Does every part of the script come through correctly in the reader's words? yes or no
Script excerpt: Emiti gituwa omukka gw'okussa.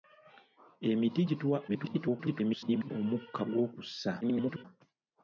no